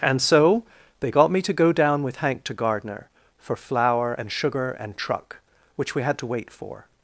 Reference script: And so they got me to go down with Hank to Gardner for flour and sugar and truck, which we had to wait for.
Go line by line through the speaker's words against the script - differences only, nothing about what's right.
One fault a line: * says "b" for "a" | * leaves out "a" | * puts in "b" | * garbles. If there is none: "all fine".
all fine